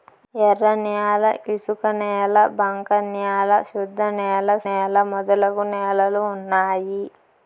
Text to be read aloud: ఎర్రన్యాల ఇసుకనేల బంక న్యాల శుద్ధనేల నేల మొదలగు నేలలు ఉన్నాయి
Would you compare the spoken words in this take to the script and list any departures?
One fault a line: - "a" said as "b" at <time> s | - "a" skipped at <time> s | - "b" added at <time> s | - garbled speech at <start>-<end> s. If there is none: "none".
none